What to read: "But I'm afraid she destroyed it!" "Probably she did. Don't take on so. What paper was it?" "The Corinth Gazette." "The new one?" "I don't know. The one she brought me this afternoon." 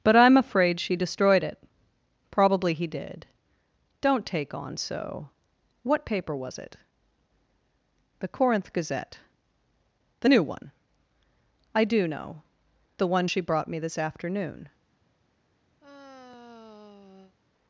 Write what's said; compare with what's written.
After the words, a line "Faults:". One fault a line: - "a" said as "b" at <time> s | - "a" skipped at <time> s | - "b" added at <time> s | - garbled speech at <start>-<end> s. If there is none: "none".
"But I'm afraid she destroyed it!" "Probably he did. Don't take on so. What paper was it?" "The Corinth Gazette." "The new one?" "I do know. The one she brought me this afternoon."
Faults:
- "she" said as "he" at 2.7 s
- "don't" said as "do" at 11.8 s